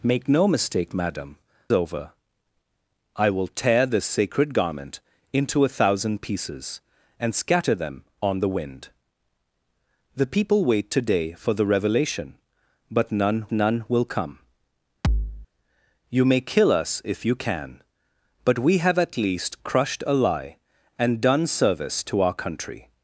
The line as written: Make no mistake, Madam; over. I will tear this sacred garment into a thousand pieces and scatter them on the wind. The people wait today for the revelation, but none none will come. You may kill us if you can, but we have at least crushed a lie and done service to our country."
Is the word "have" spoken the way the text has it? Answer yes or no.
yes